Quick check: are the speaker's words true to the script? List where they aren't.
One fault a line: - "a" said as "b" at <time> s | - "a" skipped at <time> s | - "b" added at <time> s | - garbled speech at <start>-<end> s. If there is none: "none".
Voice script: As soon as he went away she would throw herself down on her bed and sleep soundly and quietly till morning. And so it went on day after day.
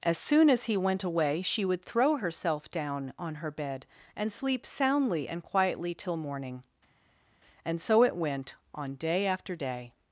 none